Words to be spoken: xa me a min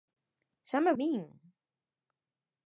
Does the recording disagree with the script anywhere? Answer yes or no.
no